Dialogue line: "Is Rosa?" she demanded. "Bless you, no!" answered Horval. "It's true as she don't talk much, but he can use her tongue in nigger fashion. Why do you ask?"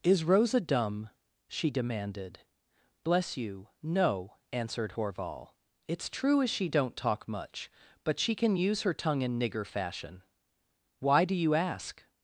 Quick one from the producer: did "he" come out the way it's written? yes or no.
no